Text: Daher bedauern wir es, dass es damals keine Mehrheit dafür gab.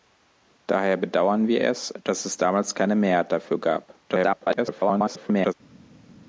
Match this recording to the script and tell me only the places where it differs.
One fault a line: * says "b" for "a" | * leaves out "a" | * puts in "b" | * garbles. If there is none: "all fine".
* garbles